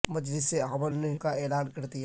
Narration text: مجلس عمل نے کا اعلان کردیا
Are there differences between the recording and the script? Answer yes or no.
no